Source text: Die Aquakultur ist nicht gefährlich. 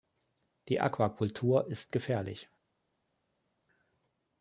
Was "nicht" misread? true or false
true